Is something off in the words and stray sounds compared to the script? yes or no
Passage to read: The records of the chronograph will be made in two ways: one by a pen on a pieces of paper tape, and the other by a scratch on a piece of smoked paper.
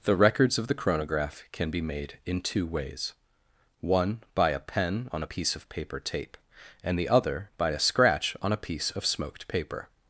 yes